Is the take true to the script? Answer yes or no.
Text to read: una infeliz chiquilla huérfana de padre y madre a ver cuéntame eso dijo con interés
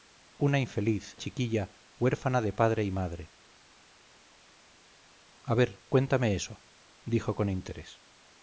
yes